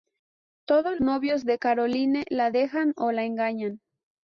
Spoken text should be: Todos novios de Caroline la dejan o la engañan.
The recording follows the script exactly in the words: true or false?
true